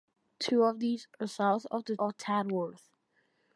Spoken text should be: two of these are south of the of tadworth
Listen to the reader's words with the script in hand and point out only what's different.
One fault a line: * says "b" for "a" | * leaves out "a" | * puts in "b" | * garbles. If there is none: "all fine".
all fine